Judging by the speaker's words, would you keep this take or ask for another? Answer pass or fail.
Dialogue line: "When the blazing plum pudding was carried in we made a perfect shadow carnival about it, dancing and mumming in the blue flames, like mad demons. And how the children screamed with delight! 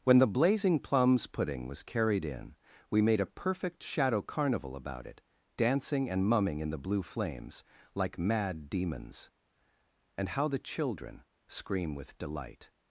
fail